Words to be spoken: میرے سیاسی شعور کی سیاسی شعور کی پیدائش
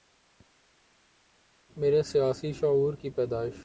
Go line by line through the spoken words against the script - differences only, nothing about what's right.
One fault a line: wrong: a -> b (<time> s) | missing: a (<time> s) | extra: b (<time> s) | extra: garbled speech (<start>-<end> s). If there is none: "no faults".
missing: سیاسی شعور کی (3.1 s)